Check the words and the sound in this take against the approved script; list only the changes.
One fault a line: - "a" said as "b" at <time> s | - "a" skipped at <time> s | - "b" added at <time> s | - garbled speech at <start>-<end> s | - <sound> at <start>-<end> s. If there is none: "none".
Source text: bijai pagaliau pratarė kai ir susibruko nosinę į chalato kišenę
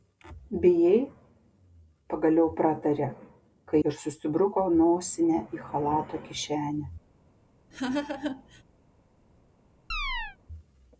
- laugh at 7.7-8.6 s
- chirp at 9.9-10.4 s